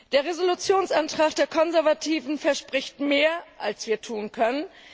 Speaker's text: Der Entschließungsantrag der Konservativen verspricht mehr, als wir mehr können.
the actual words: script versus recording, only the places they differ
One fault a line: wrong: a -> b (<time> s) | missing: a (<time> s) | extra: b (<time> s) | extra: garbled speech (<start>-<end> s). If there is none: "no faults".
wrong: mehr -> tun (4.0 s)